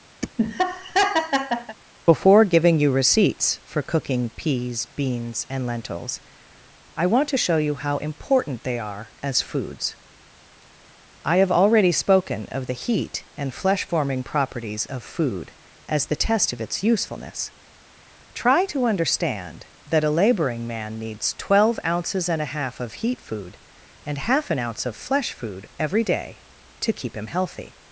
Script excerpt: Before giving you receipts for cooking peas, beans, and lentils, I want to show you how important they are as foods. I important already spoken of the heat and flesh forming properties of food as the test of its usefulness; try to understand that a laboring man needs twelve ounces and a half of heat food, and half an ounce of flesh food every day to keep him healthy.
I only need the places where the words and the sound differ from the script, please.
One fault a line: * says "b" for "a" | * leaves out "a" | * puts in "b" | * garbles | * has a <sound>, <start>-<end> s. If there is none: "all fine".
* has a laugh, 0.2-1.8 s
* says "have" for "important"